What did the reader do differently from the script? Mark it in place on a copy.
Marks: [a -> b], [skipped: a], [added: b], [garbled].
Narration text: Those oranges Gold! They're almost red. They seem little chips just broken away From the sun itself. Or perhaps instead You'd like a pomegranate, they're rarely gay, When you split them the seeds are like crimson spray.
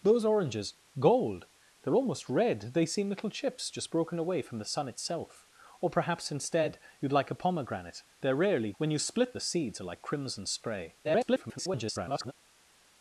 Those oranges Gold! They're almost red. They seem little chips just broken away From the sun itself. Or perhaps instead You'd like a pomegranate, they're rarely [skipped: gay,] When you split [skipped: them] the seeds are like crimson spray. [garbled]